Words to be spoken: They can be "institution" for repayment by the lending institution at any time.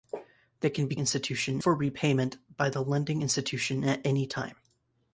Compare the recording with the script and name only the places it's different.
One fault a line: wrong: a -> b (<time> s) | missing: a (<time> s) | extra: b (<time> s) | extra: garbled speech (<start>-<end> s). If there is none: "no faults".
no faults